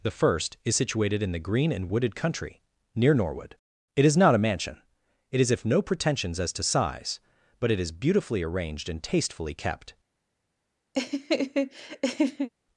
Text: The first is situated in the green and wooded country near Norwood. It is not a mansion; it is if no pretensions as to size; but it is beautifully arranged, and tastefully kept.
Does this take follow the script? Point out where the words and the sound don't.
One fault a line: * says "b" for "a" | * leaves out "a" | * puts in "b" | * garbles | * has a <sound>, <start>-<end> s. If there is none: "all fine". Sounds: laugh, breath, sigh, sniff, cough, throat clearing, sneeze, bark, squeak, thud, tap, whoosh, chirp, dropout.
* has a laugh, 10.9-12.5 s